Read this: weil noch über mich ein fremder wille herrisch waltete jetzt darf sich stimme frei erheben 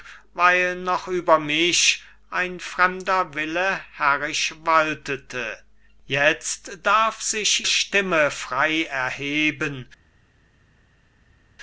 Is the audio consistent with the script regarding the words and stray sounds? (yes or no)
yes